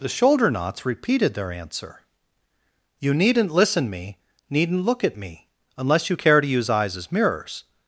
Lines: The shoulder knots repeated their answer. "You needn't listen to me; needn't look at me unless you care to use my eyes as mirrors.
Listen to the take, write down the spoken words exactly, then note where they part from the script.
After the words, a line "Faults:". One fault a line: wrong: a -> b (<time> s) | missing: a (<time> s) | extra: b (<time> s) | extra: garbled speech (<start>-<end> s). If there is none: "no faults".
The shoulder knots repeated their answer. "You needn't listen me; needn't look at me unless you care to use eyes as mirrors.
Faults:
missing: to (3.9 s)
missing: my (6.7 s)